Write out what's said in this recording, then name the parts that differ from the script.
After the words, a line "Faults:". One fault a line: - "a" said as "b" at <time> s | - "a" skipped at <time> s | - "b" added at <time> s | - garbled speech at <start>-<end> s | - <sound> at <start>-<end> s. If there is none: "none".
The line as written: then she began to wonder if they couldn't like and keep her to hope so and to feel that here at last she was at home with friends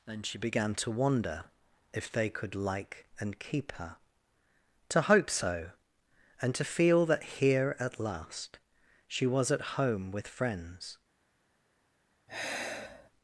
then she began to wonder if they could like and keep her to hope so and to feel that here at last she was at home with friends
Faults:
- "couldn't" said as "could" at 2.3 s
- sigh at 12.3-13.1 s